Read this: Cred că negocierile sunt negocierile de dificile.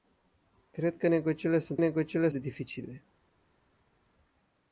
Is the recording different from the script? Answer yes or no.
no